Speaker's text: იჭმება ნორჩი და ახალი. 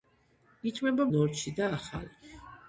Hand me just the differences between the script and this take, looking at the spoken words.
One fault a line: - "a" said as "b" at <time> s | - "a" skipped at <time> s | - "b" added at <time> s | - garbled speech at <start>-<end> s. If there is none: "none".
none